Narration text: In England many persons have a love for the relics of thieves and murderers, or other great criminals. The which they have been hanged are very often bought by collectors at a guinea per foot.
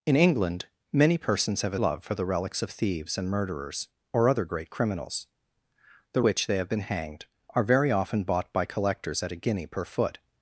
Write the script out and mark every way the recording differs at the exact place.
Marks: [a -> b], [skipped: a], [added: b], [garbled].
In England many persons have a love for the relics of thieves and murderers, or other great criminals. The which they have been hanged are very often bought by collectors at a guinea per foot.